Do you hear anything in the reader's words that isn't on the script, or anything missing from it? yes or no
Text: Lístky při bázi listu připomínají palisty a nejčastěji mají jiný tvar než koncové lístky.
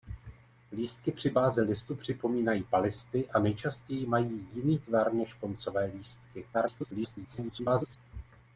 yes